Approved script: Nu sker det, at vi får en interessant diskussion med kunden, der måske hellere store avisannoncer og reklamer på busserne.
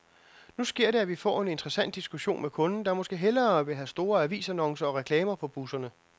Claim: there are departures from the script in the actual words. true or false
true